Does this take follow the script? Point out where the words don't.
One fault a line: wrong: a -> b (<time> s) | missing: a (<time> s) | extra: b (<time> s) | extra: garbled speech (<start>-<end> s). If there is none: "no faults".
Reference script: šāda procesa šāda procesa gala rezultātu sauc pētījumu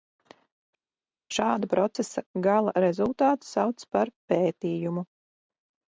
missing: šāda procesa (2.2 s)
extra: par (4.0 s)